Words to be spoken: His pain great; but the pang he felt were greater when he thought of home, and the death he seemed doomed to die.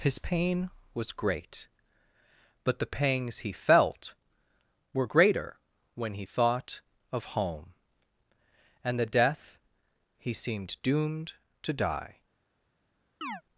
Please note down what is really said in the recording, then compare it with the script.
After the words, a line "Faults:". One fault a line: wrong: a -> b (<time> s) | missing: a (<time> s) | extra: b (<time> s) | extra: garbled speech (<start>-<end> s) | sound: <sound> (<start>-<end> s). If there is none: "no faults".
His pain was great; but the pangs he felt were greater when he thought of home, and the death he seemed doomed to die.
Faults:
extra: was (0.9 s)
wrong: pang -> pangs (2.9 s)
sound: chirp (13.2-13.4 s)